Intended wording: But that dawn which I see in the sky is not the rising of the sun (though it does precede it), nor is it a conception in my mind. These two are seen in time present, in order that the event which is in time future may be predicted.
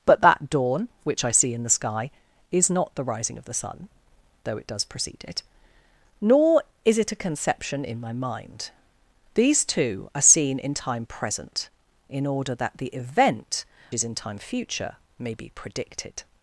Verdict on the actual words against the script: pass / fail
fail